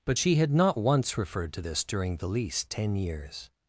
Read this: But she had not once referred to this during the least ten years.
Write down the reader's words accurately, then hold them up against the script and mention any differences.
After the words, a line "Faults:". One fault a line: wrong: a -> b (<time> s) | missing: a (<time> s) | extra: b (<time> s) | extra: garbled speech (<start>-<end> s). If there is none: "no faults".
But she had not once referred to this during the least ten years.
Faults:
no faults